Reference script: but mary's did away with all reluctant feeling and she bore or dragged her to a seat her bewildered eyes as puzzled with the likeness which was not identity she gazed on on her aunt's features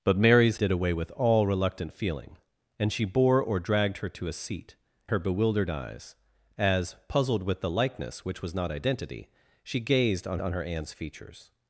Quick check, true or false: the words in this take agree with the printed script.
true